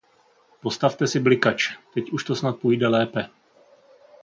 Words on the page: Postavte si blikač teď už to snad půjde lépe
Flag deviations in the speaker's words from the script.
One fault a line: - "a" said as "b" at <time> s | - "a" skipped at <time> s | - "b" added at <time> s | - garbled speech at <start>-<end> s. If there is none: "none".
none